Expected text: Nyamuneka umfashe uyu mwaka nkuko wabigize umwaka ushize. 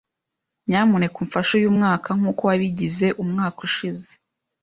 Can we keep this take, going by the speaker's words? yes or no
yes